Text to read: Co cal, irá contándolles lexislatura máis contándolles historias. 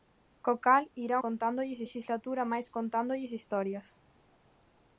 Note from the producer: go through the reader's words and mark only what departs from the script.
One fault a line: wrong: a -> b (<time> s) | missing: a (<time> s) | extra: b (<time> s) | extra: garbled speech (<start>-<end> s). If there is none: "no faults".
no faults